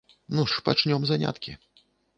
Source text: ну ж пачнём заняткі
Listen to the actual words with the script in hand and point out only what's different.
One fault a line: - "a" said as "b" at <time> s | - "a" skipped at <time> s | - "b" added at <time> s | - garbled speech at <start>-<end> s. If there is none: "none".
none